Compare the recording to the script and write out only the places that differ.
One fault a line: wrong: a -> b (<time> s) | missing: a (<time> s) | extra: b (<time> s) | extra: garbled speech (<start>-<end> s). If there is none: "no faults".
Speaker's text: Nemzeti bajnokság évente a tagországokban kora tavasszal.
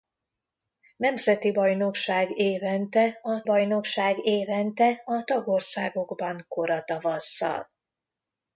extra: bajnokság évente a (3.4 s)